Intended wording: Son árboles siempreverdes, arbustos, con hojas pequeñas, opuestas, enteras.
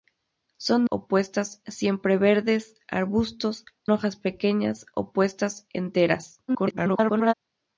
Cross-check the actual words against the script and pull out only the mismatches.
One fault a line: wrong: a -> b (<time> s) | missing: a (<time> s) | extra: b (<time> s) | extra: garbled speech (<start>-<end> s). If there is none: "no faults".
wrong: árboles -> opuestas (0.9 s)
missing: con (3.7 s)
extra: garbled speech (6.5-7.3 s)